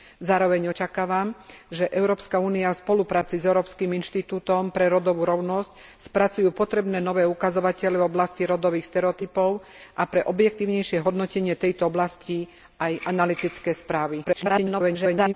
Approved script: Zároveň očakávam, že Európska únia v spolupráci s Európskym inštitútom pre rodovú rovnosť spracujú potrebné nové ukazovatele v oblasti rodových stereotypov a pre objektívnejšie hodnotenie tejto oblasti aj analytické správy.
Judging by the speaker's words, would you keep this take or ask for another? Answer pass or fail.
fail